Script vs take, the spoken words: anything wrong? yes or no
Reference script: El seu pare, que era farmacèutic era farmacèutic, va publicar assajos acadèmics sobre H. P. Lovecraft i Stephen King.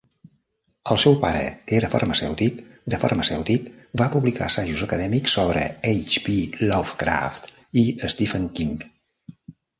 no